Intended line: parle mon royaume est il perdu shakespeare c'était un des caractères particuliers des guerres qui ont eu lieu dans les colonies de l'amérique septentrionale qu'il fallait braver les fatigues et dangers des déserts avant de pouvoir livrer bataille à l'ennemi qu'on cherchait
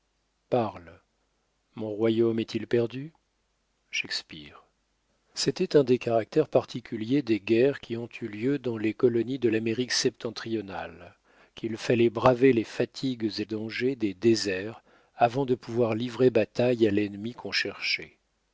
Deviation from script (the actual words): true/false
false